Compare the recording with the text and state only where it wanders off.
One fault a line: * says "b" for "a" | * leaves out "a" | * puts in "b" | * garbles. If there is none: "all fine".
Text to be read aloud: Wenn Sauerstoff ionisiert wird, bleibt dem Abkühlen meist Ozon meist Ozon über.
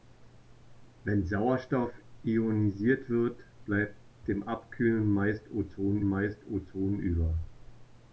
all fine